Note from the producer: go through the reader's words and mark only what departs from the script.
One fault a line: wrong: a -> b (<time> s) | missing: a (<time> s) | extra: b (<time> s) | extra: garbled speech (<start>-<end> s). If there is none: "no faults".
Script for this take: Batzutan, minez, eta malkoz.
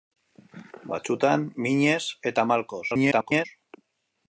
extra: garbled speech (2.9-3.5 s)